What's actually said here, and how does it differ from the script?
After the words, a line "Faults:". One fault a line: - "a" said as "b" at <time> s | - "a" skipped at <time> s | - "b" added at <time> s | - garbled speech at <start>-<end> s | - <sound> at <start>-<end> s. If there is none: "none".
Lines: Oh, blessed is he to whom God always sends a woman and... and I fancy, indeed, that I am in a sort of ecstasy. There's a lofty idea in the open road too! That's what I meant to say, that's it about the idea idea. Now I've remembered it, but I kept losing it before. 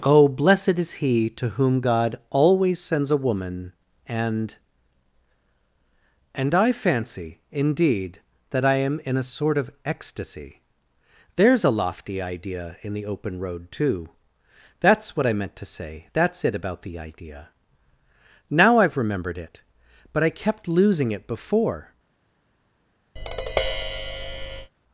Oh, blessed is he to whom God always sends a woman and... and I fancy, indeed, that I am in a sort of ecstasy. There's a lofty idea in the open road too! That's what I meant to say, that's it about the idea. Now I've remembered it, but I kept losing it before.
Faults:
- "idea" skipped at 17.5 s
- tap at 23.2-24.7 s